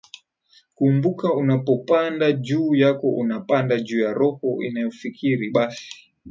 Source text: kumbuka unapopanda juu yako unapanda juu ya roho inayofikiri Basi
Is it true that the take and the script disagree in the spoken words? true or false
false